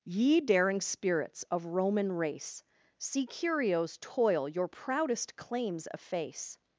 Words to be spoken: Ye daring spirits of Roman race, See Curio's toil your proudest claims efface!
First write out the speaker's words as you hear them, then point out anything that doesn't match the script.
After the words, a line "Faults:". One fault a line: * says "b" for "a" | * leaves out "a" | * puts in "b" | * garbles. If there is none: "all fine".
Ye daring spirits of Roman race, See Curio's toil your proudest claims efface!
Faults:
all fine